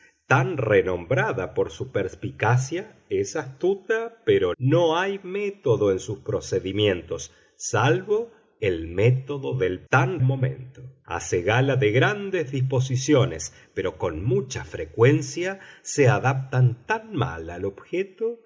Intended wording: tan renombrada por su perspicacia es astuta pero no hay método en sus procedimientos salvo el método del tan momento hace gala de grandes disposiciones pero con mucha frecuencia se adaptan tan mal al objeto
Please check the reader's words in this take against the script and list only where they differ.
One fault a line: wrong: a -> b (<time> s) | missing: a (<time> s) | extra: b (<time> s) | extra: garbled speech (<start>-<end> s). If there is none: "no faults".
no faults